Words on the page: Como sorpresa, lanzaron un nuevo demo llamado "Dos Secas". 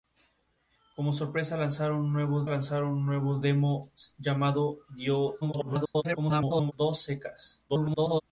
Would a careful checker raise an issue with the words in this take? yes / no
yes